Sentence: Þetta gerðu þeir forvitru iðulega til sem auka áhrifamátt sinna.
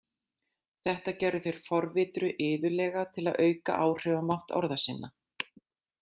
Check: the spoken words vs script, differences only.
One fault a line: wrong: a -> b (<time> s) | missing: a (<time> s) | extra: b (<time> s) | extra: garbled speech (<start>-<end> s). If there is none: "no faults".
wrong: sem -> að (3.3 s)
extra: orða (4.6 s)